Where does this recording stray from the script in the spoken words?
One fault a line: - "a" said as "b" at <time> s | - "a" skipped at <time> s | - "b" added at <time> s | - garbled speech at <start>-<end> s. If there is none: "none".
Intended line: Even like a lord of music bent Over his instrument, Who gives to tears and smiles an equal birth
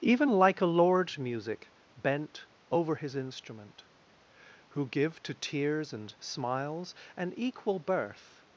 - "of" skipped at 1.1 s
- "gives" said as "give" at 4.9 s